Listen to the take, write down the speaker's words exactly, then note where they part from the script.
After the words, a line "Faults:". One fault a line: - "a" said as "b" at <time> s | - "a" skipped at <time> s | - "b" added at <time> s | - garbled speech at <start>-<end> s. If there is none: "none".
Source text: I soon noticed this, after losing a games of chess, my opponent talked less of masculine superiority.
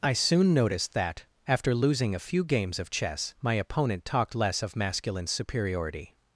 I soon noticed that, after losing a few games of chess, my opponent talked less of masculine superiority.
Faults:
- "this" said as "that" at 0.9 s
- "few" added at 2.2 s